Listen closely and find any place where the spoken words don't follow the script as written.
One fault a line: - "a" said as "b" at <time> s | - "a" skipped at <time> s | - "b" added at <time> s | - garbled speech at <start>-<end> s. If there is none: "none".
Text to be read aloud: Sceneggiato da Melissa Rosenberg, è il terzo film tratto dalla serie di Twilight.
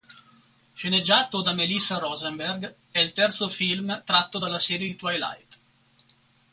none